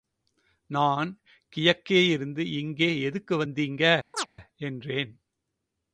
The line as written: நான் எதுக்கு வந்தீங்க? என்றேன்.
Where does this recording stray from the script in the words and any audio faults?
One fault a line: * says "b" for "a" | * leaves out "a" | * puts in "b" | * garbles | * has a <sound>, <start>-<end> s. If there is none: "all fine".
* puts in "கியக்கேயிருந்து இங்கே"
* has a chirp, 4.1-4.3 s